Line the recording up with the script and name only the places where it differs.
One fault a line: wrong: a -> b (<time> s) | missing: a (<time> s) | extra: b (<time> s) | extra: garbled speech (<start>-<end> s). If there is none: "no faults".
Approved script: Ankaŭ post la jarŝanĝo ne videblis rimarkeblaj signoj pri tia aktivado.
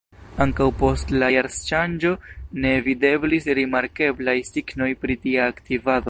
no faults